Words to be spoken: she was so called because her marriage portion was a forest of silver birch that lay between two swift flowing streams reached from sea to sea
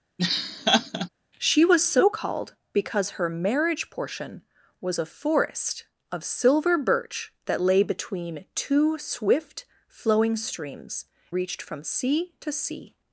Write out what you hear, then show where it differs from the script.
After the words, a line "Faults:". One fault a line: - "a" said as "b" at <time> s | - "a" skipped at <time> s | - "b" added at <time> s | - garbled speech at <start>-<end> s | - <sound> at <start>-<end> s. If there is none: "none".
she was so called because her marriage portion was a forest of silver birch that lay between two swift flowing streams reached from sea to sea
Faults:
- laugh at 0.2-1.1 s